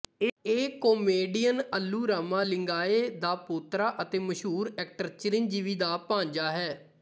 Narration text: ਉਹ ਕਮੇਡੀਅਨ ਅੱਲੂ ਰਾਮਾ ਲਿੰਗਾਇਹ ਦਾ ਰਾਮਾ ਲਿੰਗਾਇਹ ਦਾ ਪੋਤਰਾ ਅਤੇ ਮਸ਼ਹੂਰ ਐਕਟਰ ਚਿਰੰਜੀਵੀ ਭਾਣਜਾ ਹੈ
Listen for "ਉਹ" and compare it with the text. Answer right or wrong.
wrong